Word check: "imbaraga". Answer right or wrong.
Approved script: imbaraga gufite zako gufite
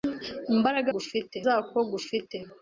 right